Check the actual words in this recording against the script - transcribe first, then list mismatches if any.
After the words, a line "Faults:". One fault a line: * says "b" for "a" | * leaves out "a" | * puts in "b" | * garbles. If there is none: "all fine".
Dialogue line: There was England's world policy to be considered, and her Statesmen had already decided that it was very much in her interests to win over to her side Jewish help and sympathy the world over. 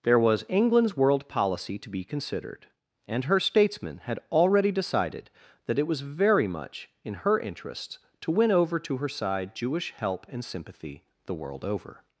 There was England's world policy to be considered, and her Statesmen had already decided that it was very much in her interests to win over to her side Jewish help and sympathy the world over.
Faults:
all fine